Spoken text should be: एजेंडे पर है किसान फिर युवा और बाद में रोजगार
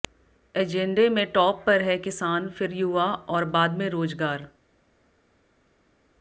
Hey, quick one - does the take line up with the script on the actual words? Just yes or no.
no